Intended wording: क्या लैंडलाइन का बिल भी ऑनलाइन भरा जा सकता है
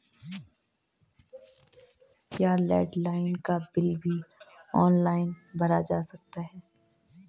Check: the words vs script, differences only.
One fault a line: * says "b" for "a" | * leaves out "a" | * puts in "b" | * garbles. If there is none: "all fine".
all fine